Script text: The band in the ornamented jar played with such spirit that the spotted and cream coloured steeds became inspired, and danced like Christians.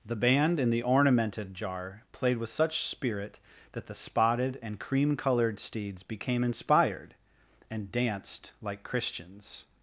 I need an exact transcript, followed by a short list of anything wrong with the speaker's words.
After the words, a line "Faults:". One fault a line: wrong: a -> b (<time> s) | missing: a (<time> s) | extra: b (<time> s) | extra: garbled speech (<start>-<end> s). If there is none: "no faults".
The band in the ornamented jar played with such spirit that the spotted and cream coloured steeds became inspired, and danced like Christians.
Faults:
no faults